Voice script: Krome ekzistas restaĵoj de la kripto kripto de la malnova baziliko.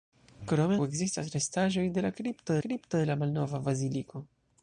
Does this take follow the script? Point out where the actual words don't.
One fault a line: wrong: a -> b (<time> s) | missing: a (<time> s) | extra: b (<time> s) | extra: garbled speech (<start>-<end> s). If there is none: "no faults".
no faults